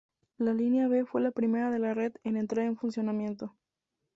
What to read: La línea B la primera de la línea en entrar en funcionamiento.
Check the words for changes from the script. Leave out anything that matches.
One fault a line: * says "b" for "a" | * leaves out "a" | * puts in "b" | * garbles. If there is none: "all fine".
* puts in "fue"
* says "red" for "línea"